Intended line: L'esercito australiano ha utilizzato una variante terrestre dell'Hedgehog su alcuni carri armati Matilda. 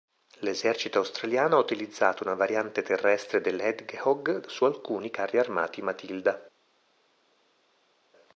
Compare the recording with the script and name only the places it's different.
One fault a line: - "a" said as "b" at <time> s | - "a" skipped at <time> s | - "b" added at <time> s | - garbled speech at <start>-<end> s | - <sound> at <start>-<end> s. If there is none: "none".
none